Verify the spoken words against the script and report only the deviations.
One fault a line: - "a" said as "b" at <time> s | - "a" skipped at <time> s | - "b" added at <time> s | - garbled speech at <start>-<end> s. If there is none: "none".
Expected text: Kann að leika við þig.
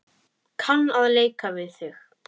none